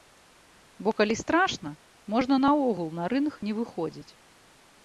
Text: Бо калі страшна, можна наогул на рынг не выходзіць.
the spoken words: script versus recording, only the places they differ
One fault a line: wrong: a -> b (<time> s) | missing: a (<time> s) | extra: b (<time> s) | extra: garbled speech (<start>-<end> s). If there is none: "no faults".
no faults